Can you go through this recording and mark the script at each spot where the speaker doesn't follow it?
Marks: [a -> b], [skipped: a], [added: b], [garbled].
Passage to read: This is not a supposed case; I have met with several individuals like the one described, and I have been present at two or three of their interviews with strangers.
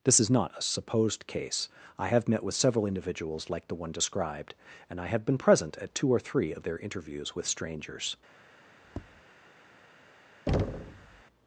This is not a supposed case; I have met with several individuals like the one described, and I have been present at two or three of their interviews with strangers.